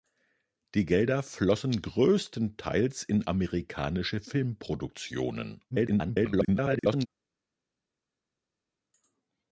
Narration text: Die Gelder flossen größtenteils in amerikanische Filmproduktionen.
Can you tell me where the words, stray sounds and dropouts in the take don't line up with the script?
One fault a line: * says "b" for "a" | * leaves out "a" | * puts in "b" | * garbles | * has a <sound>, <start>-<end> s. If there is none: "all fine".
* garbles